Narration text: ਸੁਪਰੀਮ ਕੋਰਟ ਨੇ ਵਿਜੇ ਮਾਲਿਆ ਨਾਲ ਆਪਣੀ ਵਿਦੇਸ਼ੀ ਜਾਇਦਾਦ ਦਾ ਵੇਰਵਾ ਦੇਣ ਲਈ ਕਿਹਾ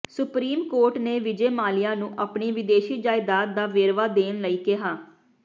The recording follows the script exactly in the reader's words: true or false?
false